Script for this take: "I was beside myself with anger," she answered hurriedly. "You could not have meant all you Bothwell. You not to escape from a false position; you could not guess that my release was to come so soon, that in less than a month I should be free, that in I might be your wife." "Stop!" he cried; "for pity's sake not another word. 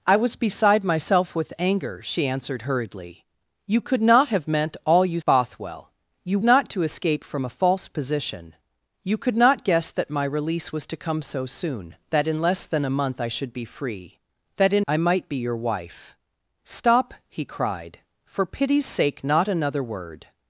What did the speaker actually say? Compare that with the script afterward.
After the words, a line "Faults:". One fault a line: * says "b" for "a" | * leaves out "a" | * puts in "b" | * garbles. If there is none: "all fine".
"I was beside myself with anger," she answered hurriedly. "You could not have meant all you Bothwell. You not to escape from a false position; you could not guess that my release was to come so soon, that in less than a month I should be free, that in I might be your wife." "Stop!" he cried; "for pity's sake not another word.
Faults:
all fine